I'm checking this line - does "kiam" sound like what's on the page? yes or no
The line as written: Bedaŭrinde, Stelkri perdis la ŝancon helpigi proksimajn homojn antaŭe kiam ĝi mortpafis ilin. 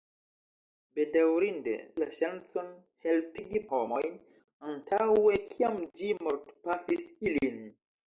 yes